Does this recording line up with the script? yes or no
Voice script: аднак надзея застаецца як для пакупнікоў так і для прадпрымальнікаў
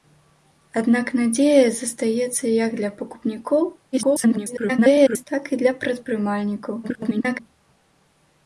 no